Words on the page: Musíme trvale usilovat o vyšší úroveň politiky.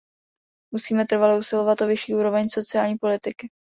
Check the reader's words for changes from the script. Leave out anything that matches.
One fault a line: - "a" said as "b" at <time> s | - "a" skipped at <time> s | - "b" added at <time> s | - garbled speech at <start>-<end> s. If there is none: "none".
- "sociální" added at 2.5 s